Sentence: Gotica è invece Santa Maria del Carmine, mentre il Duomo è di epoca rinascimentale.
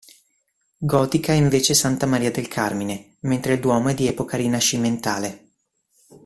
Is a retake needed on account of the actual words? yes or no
no